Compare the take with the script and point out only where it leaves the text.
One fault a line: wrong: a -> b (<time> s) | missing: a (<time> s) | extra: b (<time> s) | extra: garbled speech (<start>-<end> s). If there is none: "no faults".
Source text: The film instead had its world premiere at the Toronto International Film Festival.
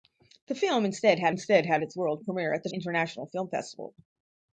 extra: instead had (1.3 s)
missing: Toronto (2.7 s)